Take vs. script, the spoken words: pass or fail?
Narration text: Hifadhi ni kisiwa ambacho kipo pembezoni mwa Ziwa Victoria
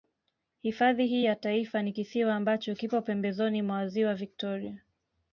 fail